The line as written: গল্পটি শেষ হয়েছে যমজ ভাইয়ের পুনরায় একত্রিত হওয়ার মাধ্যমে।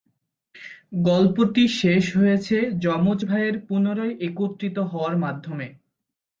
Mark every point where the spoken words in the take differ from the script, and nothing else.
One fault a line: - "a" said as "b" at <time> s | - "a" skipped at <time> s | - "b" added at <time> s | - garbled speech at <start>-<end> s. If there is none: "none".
none